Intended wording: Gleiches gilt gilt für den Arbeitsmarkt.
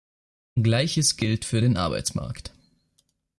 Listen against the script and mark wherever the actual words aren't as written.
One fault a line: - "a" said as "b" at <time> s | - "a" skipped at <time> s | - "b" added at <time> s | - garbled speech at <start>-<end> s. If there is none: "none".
- "gilt" skipped at 1.4 s